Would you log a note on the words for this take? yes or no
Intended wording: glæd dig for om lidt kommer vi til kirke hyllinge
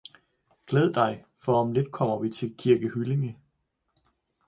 no